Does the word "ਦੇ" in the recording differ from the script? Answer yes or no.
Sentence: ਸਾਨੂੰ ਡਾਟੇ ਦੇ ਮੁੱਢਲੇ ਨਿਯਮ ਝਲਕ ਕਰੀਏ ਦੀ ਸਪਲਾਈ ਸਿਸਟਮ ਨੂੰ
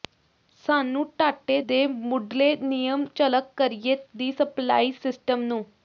no